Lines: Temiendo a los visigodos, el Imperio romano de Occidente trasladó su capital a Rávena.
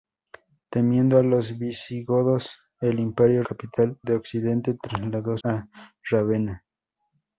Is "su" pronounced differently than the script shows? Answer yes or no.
yes